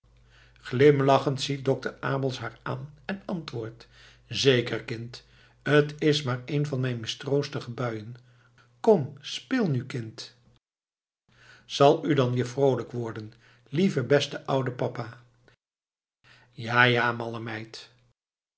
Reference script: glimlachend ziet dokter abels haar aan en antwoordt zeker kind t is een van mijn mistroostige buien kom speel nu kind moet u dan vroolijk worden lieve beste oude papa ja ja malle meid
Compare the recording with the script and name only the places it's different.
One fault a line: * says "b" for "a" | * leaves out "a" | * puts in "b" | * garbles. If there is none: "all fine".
* puts in "maar"
* says "zal" for "moet"
* puts in "weer"